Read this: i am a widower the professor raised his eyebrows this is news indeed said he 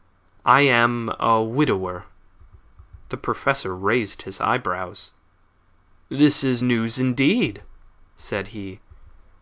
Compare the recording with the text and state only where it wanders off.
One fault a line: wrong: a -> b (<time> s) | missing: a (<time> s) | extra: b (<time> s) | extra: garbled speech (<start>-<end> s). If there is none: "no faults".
no faults